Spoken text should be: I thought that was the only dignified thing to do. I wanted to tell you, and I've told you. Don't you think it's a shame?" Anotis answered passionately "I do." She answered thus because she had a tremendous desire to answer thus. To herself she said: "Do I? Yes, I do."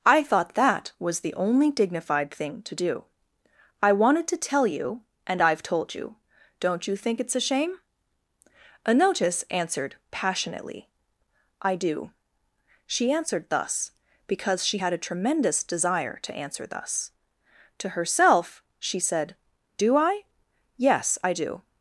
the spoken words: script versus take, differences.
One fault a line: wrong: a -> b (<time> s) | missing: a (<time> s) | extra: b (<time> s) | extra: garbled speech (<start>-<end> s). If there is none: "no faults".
no faults